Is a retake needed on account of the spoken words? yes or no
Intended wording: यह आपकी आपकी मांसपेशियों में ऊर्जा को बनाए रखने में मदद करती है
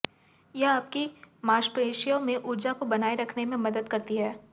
yes